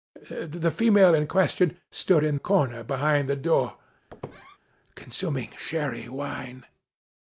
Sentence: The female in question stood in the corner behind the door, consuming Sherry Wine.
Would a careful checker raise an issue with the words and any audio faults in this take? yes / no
yes